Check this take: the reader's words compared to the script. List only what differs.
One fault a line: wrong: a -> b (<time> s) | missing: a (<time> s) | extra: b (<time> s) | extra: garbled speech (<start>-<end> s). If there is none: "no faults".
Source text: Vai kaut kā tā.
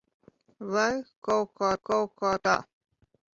extra: kaut kā (1.9 s)